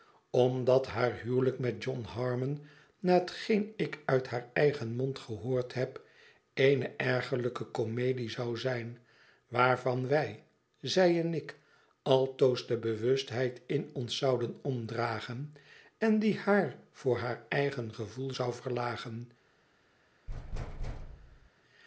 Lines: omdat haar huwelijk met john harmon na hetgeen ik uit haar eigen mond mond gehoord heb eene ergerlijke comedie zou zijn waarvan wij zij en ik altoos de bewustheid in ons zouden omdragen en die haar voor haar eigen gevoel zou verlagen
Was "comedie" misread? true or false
false